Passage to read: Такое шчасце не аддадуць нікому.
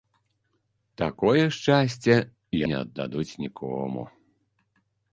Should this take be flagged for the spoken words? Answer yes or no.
no